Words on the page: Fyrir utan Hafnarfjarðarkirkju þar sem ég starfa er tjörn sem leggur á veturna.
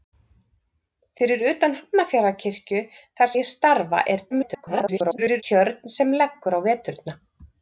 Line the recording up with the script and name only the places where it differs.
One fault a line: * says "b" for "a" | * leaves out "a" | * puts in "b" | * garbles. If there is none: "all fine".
* leaves out "sem"
* garbles